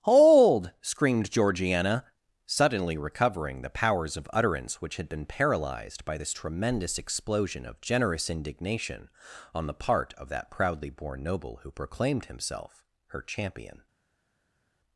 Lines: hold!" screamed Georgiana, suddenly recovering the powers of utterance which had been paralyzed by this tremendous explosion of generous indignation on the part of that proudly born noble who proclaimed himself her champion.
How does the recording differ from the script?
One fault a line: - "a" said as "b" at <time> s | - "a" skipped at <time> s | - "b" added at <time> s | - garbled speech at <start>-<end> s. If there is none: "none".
none